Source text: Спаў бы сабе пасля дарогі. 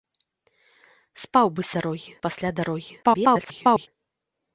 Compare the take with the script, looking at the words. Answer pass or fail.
fail